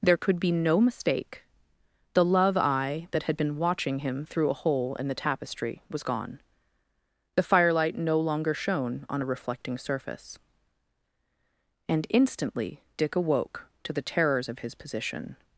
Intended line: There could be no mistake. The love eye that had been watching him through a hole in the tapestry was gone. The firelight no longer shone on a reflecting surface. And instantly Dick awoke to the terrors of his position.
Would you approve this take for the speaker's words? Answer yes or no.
yes